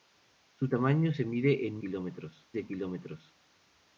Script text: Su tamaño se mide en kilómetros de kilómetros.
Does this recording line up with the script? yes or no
yes